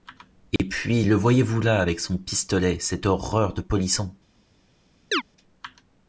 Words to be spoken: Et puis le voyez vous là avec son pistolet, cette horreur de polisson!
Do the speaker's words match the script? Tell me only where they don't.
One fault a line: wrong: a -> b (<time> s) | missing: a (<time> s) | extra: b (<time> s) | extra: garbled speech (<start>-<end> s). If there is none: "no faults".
no faults